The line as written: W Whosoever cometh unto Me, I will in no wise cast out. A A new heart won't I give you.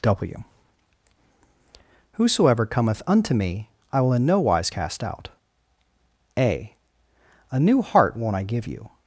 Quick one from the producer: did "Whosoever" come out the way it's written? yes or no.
yes